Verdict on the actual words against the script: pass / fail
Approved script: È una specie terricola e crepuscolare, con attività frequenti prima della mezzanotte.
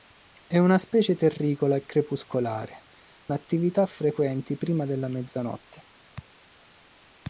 fail